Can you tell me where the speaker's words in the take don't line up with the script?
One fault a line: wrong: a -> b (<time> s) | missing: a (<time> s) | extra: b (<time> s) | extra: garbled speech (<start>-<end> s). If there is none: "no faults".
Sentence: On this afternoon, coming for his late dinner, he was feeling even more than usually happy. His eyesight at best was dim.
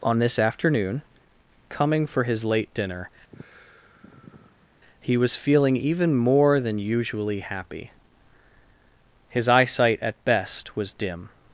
no faults